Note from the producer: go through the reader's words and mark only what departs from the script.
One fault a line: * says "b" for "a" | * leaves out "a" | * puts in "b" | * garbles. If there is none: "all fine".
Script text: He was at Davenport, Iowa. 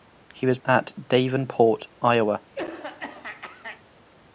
all fine